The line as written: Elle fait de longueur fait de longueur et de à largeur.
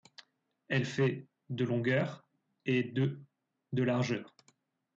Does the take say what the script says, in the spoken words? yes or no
no